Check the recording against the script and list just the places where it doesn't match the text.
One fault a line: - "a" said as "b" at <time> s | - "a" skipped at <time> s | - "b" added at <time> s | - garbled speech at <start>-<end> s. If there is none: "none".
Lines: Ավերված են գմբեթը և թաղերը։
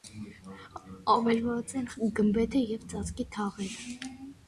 - "ծածկի" added at 3.0 s